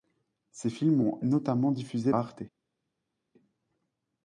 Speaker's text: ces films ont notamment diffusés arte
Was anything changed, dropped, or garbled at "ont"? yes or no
no